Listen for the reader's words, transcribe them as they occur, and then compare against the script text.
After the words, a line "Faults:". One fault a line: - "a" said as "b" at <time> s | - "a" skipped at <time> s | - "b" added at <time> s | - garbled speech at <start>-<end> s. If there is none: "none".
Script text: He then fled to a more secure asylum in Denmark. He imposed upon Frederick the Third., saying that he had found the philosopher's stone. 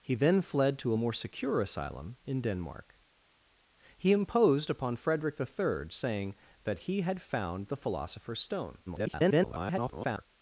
He then fled to a more secure asylum in Denmark. He imposed upon Frederick the Third., saying that he had found the philosopher's stone. [garbled]
Faults:
- garbled speech at 8.9-10.3 s